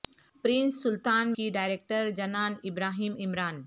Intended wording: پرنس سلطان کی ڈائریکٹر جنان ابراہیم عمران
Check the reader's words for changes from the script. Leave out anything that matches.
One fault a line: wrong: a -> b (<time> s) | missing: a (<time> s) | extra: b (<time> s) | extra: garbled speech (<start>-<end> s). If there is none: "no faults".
no faults